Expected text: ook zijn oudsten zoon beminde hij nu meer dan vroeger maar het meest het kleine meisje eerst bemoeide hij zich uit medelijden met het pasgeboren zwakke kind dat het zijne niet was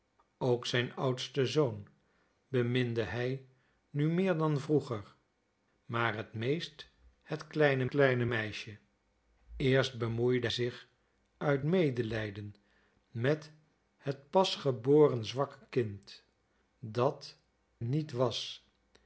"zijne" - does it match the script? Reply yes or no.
no